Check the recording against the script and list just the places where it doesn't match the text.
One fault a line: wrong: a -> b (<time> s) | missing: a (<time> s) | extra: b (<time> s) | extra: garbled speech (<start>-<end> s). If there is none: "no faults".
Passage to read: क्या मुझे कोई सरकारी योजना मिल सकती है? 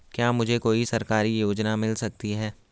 no faults